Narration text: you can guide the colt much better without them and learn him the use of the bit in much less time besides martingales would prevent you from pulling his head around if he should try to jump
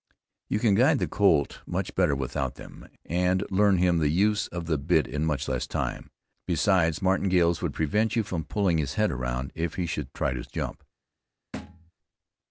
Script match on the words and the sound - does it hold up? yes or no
no